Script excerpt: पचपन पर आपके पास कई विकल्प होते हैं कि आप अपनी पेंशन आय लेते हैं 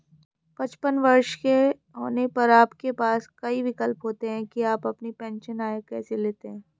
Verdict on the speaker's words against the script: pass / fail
fail